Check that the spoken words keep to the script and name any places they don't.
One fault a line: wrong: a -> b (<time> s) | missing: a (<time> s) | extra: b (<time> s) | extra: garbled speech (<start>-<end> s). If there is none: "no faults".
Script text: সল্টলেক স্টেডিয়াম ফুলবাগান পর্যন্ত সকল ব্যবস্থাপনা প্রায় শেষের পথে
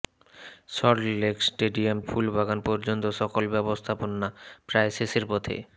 no faults